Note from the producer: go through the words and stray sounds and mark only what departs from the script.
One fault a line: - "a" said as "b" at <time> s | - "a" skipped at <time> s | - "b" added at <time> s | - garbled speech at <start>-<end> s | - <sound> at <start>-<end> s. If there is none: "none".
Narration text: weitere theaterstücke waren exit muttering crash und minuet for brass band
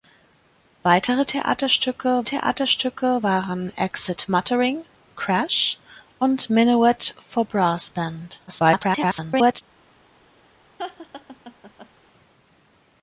- "theaterstücke" added at 2.2 s
- garbled speech at 8.5-9.6 s
- laugh at 10.8-11.9 s